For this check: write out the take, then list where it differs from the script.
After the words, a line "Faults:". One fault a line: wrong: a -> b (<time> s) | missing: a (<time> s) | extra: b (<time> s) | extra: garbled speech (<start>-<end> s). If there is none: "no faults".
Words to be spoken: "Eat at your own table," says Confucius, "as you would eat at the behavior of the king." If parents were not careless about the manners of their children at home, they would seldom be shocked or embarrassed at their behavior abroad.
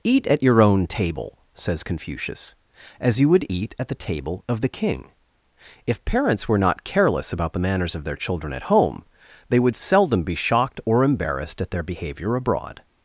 "Eat at your own table," says Confucius, "as you would eat at the table of the king." If parents were not careless about the manners of their children at home, they would seldom be shocked or embarrassed at their behavior abroad.
Faults:
wrong: behavior -> table (3.9 s)